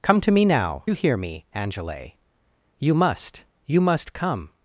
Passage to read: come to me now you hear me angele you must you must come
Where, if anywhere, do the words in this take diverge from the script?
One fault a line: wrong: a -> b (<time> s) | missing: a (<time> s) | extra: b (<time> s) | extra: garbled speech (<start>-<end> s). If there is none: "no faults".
no faults